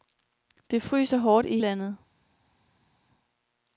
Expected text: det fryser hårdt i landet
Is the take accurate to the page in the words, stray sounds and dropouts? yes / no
yes